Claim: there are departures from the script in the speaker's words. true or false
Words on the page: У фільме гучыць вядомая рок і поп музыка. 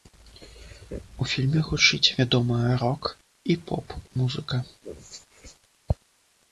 false